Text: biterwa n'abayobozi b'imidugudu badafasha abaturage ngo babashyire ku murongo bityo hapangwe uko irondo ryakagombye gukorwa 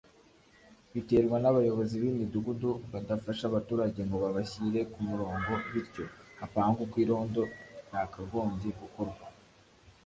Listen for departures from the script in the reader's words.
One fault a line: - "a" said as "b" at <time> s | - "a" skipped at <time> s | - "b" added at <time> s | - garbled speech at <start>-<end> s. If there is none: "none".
none